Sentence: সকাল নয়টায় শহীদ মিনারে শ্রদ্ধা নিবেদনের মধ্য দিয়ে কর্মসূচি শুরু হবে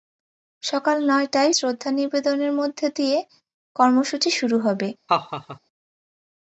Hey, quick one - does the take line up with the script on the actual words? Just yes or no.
no